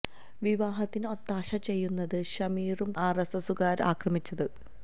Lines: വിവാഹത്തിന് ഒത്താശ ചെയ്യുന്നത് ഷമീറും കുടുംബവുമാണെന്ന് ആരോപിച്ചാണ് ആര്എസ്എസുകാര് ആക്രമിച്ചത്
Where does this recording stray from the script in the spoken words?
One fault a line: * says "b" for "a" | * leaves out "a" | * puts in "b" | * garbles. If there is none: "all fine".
* leaves out "കുടുംബവുമാണെന്ന് ആരോപിച്ചാണ്"